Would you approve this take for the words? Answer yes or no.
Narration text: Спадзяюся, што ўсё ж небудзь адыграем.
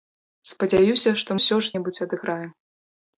yes